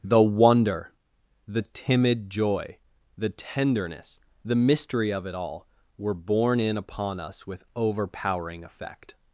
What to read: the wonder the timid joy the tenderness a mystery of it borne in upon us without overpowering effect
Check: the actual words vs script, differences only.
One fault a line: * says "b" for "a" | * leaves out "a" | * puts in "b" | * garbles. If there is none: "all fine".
* says "the" for "a"
* puts in "all were"
* says "with" for "without"